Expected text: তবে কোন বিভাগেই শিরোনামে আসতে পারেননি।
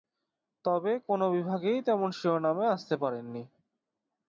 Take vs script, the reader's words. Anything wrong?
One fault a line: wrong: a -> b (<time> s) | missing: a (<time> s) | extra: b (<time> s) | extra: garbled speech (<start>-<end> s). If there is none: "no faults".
extra: তেমন (1.8 s)